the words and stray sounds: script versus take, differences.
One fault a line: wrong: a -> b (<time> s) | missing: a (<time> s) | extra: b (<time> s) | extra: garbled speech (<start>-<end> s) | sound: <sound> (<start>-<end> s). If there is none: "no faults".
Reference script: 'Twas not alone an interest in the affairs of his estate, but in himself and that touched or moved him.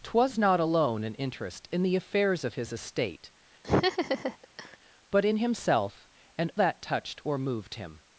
sound: laugh (3.6-4.8 s)